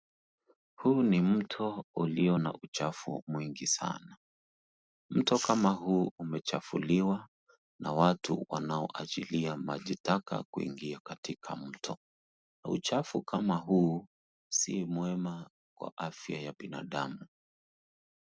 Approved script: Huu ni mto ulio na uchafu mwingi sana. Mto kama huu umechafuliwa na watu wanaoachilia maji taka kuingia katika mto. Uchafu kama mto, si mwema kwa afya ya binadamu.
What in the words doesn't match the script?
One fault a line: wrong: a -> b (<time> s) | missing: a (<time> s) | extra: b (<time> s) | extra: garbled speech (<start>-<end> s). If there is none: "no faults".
wrong: mto -> huu (13.6 s)